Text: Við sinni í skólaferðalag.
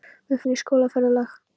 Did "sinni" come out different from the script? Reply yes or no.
no